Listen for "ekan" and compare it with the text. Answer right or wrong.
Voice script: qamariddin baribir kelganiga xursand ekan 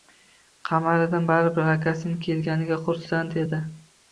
wrong